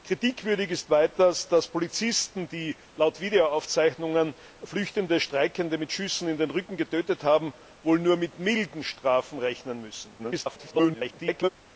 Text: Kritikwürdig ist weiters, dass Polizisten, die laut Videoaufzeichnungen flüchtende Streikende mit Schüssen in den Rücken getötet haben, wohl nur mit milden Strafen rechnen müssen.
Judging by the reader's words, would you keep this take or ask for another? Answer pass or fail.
fail